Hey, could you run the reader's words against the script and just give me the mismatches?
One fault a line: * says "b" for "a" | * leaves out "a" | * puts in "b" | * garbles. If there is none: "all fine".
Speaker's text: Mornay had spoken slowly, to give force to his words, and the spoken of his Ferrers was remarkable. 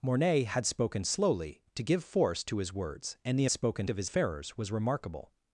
all fine